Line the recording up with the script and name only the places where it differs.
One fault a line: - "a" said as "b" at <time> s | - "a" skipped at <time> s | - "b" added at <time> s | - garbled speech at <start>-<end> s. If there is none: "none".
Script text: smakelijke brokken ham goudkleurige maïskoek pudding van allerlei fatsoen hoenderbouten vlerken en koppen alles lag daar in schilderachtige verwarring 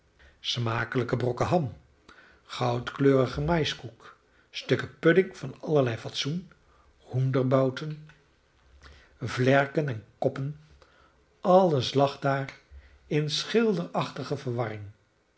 - "stukken" added at 4.5 s